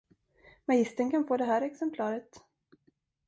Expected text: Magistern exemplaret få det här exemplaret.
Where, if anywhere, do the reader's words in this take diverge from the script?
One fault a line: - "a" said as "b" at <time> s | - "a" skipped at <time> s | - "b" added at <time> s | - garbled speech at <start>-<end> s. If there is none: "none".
- "exemplaret" said as "kan" at 1.1 s